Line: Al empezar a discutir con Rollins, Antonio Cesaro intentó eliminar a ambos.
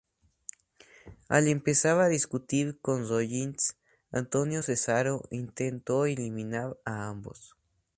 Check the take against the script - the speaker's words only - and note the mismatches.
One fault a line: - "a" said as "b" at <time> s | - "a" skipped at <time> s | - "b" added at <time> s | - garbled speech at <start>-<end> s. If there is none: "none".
none